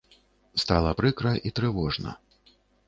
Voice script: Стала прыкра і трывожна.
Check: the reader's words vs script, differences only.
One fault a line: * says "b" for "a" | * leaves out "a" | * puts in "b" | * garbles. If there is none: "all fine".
all fine